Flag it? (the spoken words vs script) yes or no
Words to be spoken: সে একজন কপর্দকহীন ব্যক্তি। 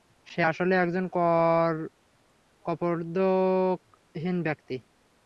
yes